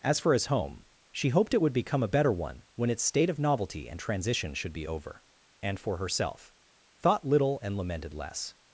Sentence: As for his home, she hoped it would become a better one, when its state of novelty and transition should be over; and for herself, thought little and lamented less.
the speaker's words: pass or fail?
pass